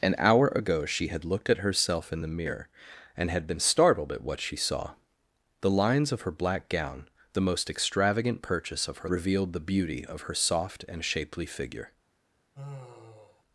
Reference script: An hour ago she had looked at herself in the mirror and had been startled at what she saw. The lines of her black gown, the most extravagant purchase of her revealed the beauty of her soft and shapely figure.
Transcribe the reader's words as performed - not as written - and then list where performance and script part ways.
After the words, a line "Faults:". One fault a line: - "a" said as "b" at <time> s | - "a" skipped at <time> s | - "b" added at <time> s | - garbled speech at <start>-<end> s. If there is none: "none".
An hour ago she had looked at herself in the mirror and had been startled at what she saw. The lines of her black gown, the most extravagant purchase of her revealed the beauty of her soft and shapely figure.
Faults:
none